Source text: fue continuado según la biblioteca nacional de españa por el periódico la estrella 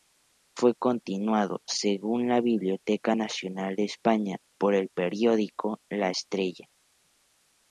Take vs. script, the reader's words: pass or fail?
pass